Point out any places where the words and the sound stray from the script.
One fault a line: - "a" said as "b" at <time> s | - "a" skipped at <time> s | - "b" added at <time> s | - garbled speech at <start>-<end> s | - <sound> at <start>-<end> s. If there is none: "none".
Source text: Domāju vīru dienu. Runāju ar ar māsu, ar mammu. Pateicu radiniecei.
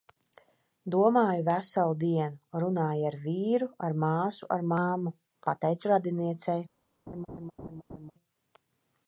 - "vīru" said as "veselu" at 1.5 s
- "vīru" added at 3.3 s
- laugh at 7.1-8.1 s